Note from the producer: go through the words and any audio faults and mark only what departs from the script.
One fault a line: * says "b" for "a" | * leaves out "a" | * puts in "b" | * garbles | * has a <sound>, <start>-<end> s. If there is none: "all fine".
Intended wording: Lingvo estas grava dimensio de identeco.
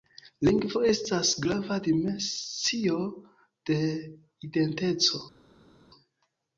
all fine